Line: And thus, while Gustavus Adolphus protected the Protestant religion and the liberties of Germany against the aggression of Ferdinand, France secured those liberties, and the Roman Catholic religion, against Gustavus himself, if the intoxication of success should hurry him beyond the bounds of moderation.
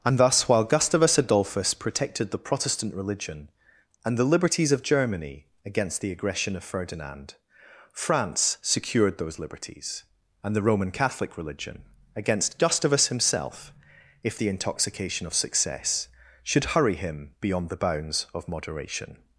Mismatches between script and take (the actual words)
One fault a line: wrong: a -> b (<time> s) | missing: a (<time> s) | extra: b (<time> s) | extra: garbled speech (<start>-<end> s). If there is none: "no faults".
no faults